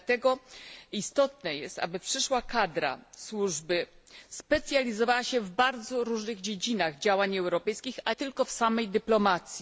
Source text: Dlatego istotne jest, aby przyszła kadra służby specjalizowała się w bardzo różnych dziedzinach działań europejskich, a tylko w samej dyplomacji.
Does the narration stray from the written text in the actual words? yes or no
no